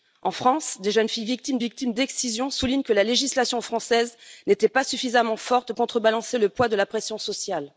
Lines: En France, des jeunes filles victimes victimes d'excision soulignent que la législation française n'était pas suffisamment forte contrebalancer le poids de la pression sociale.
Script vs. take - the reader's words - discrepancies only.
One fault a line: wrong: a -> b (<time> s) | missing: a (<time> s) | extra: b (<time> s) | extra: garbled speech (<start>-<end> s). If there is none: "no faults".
no faults